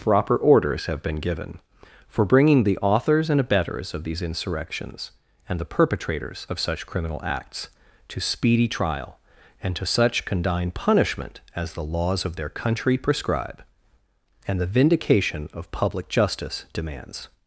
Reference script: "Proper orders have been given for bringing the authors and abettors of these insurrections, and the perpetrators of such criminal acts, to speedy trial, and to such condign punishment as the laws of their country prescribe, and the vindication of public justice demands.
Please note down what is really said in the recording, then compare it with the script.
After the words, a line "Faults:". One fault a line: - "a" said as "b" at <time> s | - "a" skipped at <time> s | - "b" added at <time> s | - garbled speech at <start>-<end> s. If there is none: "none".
"Proper orders have been given for bringing the authors and abettors of these insurrections, and the perpetrators of such criminal acts, to speedy trial, and to such condign punishment as the laws of their country prescribe, and the vindication of public justice demands.
Faults:
none